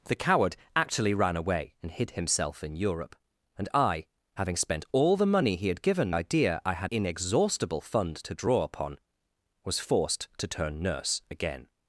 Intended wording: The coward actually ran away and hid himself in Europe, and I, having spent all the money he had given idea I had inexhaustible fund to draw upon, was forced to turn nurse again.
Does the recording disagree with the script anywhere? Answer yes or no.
no